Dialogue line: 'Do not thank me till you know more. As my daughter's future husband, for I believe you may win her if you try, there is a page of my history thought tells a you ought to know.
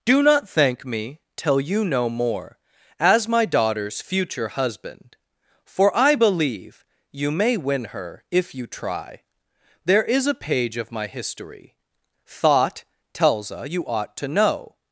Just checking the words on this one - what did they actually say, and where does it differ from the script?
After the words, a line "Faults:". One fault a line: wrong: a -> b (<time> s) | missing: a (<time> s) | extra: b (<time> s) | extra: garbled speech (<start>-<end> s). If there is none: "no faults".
'Do not thank me till you know more. As my daughter's future husband, for I believe you may win her if you try, there is a page of my history thought tells a you ought to know.
Faults:
no faults